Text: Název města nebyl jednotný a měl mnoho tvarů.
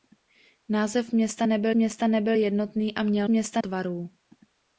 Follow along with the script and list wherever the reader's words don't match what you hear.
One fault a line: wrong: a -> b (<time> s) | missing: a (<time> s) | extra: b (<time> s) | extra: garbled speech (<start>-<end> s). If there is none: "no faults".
extra: města nebyl (1.7 s)
wrong: mnoho -> města (3.3 s)